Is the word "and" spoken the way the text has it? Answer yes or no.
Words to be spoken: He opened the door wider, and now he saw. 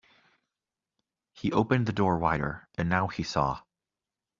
yes